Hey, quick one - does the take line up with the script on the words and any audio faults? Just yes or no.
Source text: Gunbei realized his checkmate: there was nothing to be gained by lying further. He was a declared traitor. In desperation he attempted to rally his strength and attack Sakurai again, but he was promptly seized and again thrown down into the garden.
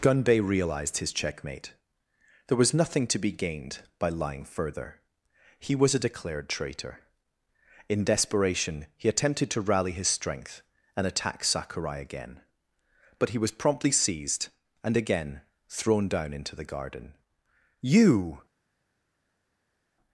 no